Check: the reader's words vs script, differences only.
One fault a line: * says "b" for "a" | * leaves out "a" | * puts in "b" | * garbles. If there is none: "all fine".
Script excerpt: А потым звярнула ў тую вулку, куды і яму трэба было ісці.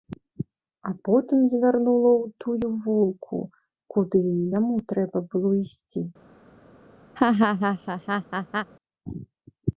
all fine